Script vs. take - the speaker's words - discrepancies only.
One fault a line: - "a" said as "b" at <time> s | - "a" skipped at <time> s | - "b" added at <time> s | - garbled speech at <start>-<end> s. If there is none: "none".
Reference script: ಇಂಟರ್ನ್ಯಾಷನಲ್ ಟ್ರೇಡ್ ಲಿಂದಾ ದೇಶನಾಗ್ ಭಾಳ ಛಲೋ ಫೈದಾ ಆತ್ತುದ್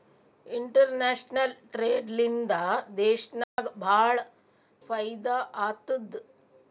- "ಛಲೋ" skipped at 4.2 s